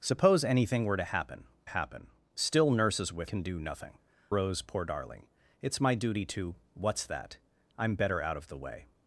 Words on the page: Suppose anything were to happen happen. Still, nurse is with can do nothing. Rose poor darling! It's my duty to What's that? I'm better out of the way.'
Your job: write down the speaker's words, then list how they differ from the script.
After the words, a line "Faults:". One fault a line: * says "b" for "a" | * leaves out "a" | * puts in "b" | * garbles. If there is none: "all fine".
Suppose anything were to happen happen. Still, nurse is with can do nothing. Rose poor darling! It's my duty to What's that? I'm better out of the way.'
Faults:
all fine